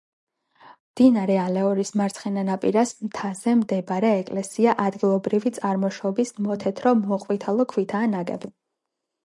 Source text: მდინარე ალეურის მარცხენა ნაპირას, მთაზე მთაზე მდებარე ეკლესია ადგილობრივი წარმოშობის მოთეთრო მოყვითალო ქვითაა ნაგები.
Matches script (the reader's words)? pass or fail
fail